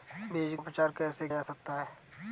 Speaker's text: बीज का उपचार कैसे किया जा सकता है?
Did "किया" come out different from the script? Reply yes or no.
yes